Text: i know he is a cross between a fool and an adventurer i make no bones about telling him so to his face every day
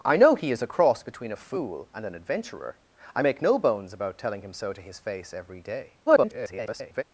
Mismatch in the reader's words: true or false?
true